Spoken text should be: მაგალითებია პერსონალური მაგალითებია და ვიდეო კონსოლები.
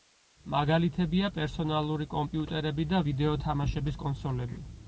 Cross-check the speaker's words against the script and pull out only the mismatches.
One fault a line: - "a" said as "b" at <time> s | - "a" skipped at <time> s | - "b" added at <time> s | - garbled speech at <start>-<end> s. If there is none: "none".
- "მაგალითებია" said as "კომპიუტერები" at 2.1 s
- "თამაშების" added at 3.5 s